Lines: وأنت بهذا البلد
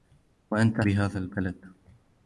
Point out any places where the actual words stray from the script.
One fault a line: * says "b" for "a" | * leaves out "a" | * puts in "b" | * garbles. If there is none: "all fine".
all fine